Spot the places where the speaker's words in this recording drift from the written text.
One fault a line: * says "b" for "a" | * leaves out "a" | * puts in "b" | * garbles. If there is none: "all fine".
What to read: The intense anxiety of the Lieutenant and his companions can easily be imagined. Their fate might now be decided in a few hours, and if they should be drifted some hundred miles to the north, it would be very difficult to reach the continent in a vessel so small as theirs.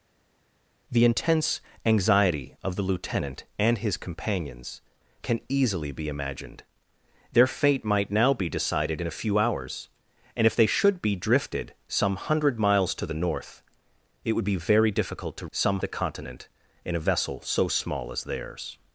* says "some" for "reach"